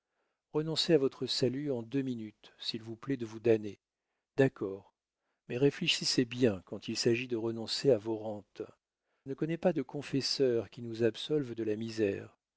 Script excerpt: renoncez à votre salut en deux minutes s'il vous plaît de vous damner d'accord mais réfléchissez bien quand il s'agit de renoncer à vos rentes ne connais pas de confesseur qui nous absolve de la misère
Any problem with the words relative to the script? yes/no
no